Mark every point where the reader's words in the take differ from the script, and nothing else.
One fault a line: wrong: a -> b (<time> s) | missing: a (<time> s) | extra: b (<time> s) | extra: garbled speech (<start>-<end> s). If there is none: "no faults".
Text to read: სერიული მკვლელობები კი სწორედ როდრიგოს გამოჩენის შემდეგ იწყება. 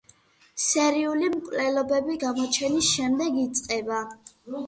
missing: კი სწორედ როდრიგოს (2.1 s)